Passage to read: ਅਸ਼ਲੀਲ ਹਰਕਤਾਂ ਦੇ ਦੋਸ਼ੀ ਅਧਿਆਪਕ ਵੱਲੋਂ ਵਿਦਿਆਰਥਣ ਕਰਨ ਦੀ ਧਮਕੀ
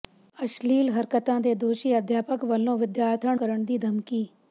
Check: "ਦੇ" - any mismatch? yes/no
no